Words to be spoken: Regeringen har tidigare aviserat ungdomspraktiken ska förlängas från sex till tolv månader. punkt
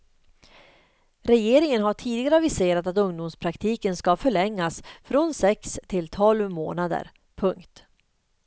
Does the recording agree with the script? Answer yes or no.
no